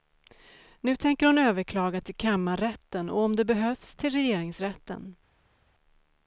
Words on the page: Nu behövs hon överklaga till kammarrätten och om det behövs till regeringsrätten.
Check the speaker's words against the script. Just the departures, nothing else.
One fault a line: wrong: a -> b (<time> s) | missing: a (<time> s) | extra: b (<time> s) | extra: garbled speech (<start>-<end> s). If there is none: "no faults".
wrong: behövs -> tänker (0.9 s)